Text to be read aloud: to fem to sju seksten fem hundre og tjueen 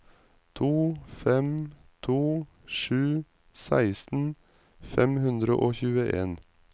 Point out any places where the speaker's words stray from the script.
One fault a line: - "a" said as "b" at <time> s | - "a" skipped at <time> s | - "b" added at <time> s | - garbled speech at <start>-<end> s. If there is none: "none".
none